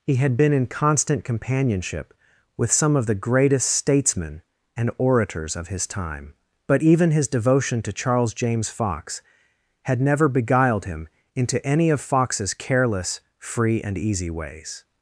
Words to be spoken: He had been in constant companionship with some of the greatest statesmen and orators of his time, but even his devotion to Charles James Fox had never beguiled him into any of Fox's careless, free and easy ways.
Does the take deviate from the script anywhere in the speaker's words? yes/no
no